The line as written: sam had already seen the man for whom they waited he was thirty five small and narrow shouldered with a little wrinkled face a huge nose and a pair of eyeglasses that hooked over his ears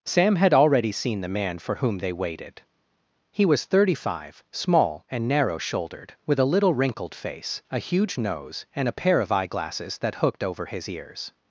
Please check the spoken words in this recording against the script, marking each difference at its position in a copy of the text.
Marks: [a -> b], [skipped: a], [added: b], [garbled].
sam had already seen the man for whom they waited he was thirty five small and narrow shouldered with a little wrinkled face a huge nose and a pair of eyeglasses that hooked over his ears